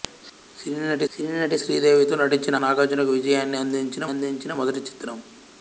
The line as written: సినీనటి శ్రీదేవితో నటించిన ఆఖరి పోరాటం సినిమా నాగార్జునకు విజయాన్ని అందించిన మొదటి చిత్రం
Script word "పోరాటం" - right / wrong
wrong